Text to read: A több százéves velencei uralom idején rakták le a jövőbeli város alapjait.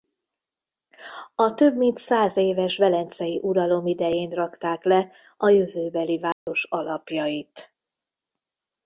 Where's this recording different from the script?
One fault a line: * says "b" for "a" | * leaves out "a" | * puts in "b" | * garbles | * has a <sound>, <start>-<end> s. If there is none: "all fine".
* puts in "mint"
* has a dropout, 6.3-6.5 s